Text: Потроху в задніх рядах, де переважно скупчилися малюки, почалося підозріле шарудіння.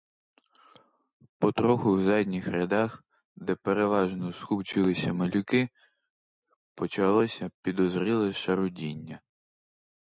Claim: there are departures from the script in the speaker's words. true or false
false